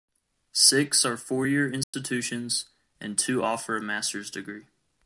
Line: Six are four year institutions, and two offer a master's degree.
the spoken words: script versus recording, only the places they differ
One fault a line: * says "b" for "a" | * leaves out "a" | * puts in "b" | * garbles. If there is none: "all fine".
all fine